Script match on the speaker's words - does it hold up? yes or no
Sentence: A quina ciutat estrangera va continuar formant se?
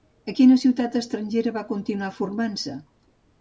yes